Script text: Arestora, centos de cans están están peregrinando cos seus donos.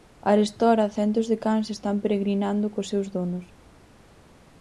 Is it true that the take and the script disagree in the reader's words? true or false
true